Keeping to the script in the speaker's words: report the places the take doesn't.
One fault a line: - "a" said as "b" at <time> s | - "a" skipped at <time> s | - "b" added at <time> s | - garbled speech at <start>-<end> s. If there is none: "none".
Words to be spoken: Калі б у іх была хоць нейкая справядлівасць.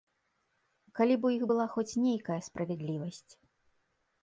none